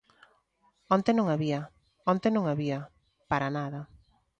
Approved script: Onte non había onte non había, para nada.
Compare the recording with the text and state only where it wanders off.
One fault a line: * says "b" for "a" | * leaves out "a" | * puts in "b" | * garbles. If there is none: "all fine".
all fine